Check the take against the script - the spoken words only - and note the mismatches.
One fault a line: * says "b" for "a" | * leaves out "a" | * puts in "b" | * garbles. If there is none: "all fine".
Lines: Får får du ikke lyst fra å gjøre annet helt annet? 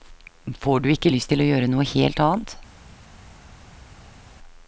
* leaves out "får"
* says "til" for "fra"
* says "noe" for "annet"